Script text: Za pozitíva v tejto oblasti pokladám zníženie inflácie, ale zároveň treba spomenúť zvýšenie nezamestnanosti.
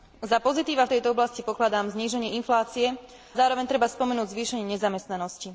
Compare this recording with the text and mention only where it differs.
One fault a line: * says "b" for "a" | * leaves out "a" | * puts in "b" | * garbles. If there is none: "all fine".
* leaves out "ale"